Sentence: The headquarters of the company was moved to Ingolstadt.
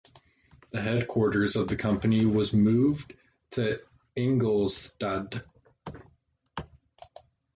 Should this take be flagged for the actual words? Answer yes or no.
no